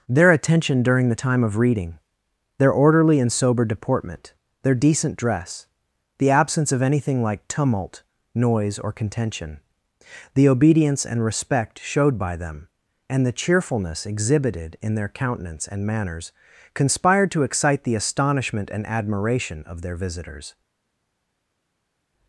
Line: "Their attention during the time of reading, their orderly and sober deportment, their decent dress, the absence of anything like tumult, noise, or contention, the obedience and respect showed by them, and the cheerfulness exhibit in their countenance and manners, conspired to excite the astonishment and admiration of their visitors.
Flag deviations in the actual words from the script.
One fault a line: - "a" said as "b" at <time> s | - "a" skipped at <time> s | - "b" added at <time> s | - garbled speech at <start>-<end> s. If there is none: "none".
- "exhibit" said as "exhibited" at 14.1 s